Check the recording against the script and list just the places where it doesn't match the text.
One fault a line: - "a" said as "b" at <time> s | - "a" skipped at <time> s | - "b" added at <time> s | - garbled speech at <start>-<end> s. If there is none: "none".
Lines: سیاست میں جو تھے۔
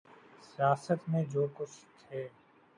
- "کچھ" added at 1.5 s